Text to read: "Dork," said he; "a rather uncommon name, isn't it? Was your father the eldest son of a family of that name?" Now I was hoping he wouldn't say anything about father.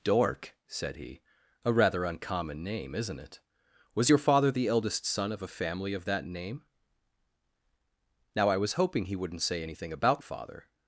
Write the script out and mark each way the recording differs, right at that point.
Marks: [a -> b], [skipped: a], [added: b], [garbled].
"Dork," said he; "a rather uncommon name, isn't it? Was your father the eldest son of a family of that name?" Now I was hoping he wouldn't say anything about father.